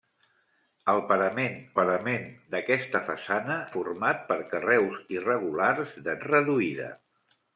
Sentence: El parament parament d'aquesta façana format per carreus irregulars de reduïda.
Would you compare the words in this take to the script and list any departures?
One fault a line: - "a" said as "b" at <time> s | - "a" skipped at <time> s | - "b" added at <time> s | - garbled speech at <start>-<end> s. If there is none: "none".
none